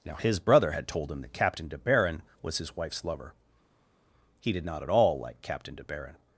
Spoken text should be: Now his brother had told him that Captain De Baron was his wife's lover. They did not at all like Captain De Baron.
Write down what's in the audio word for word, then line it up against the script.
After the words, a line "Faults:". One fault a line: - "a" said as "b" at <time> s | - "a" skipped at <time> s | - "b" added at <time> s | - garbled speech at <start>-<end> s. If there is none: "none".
Now his brother had told him that Captain De Baron was his wife's lover. He did not at all like Captain De Baron.
Faults:
- "They" said as "He" at 4.4 s